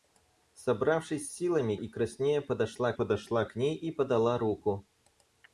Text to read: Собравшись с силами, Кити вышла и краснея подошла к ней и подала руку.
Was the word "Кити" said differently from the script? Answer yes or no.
yes